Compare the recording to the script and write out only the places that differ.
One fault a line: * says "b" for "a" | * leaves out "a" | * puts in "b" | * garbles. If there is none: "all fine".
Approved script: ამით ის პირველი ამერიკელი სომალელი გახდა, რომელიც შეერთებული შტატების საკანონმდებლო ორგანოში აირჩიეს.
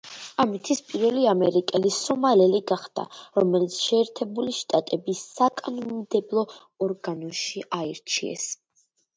all fine